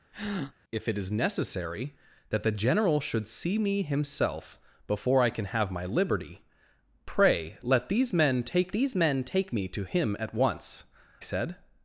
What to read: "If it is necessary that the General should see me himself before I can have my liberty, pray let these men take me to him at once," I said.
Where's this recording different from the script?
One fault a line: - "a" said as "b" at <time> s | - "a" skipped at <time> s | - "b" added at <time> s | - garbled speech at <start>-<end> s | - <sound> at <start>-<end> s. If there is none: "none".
- breath at 0.1-0.5 s
- "these men take" added at 8.7 s
- "I" skipped at 10.8 s